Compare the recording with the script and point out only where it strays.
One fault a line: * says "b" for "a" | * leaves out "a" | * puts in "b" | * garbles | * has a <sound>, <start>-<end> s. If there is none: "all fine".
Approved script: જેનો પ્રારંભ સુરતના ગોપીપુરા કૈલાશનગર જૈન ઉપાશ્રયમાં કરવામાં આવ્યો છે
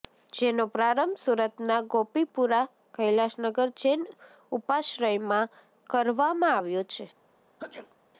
* has a sneeze, 7.6-8.0 s